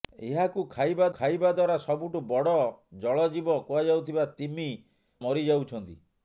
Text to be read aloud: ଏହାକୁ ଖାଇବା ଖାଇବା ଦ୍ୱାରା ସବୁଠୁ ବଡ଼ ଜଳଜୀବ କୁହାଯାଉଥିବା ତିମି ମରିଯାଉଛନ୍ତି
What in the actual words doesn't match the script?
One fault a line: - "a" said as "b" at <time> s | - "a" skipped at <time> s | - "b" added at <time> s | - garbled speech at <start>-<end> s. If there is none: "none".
none